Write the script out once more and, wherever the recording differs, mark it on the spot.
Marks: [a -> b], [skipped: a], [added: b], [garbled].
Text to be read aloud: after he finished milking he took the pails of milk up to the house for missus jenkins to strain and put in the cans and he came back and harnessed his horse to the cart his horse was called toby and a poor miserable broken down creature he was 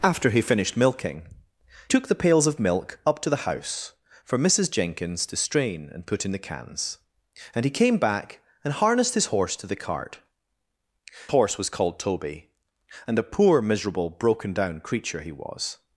after he finished milking [skipped: he] took the pails of milk up to the house for missus jenkins to strain and put in the cans and he came back and harnessed his horse to the cart [skipped: his] horse was called toby and a poor miserable broken down creature he was